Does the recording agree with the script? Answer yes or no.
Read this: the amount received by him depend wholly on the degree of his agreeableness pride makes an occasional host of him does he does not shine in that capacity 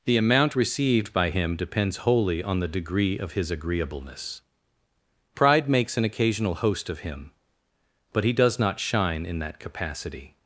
no